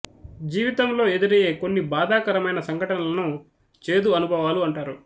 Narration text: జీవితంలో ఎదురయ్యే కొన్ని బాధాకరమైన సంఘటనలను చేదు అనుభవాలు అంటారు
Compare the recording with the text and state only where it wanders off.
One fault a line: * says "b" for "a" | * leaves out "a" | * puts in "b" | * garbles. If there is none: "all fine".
all fine